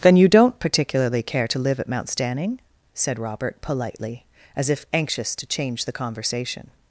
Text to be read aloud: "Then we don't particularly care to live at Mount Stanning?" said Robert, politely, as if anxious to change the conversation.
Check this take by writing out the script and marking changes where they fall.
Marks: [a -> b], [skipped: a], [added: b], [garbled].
"Then [we -> you] don't particularly care to live at Mount Stanning?" said Robert, politely, as if anxious to change the conversation.